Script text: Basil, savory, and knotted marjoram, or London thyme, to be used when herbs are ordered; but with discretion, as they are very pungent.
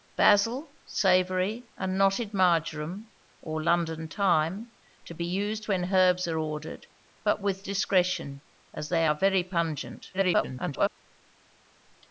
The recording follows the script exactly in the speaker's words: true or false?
false